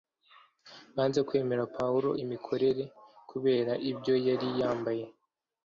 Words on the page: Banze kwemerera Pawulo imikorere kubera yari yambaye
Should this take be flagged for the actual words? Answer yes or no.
yes